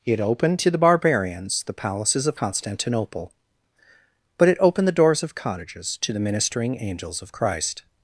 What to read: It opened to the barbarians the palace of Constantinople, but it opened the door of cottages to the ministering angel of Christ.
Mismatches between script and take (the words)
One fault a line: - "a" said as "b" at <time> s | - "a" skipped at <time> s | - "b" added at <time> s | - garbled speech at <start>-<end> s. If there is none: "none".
- "palace" said as "palaces" at 1.7 s
- "door" said as "doors" at 5.0 s
- "angel" said as "angels" at 6.8 s